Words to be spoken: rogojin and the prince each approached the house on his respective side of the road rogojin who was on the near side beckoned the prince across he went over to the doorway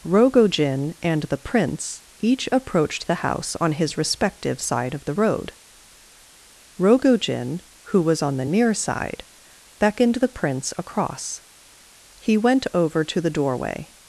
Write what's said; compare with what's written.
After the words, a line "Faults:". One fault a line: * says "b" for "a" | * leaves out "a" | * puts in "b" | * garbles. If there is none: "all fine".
rogojin and the prince each approached the house on his respective side of the road rogojin who was on the near side beckoned the prince across he went over to the doorway
Faults:
all fine